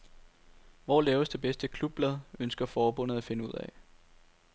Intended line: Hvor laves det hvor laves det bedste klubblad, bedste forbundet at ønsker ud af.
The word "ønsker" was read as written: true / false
false